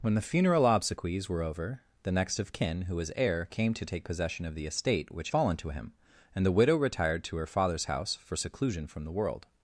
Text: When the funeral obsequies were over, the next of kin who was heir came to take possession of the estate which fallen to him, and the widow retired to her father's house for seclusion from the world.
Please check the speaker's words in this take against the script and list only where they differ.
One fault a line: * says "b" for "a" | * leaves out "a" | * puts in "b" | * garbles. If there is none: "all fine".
all fine